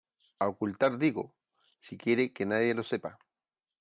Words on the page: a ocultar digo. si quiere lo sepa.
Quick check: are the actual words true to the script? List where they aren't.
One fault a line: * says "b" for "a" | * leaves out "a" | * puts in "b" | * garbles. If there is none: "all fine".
* puts in "que nadie"